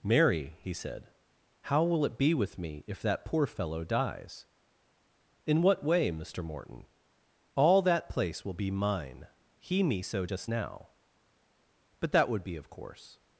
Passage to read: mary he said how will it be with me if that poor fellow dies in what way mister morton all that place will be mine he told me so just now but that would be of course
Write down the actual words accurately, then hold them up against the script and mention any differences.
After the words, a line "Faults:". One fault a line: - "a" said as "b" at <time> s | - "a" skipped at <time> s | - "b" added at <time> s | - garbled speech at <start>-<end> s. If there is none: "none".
mary he said how will it be with me if that poor fellow dies in what way mister morton all that place will be mine he me so just now but that would be of course
Faults:
- "told" skipped at 9.8 s